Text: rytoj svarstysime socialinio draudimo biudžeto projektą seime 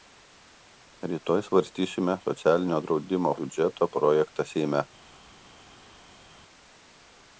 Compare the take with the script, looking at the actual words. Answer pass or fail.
pass